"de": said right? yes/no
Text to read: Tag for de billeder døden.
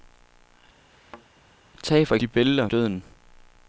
yes